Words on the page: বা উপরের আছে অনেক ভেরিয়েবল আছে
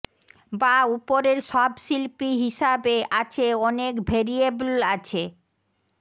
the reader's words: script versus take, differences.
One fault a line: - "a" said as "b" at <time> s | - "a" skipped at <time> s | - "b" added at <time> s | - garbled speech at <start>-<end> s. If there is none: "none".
- "সব শিল্পী হিসাবে" added at 1.5 s